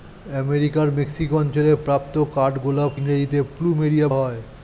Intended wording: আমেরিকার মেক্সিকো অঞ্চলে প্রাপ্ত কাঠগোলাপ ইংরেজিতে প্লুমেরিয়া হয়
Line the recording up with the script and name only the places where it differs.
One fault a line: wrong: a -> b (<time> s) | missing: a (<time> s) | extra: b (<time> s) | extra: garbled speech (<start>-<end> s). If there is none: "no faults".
no faults